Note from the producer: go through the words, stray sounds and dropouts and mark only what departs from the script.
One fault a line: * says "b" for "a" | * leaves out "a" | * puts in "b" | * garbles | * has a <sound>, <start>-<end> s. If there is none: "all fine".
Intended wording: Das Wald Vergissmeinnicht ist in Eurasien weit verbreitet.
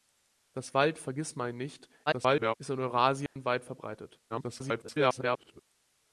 * garbles
* has a dropout, 3.3-3.4 s
* garbles